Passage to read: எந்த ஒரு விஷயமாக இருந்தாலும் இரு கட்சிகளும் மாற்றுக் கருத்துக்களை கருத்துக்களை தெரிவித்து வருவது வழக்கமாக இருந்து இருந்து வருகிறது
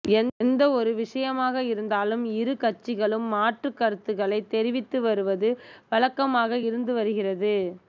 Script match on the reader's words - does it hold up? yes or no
no